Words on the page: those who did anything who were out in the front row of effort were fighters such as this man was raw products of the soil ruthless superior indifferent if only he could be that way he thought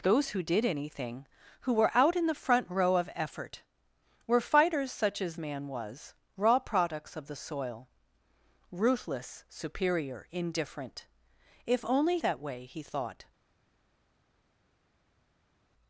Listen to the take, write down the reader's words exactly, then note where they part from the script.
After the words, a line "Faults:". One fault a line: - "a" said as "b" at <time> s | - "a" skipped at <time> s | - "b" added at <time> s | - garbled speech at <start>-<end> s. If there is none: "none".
those who did anything who were out in the front row of effort were fighters such as man was raw products of the soil ruthless superior indifferent if only that way he thought
Faults:
- "this" skipped at 5.4 s
- "he could be" skipped at 12.2 s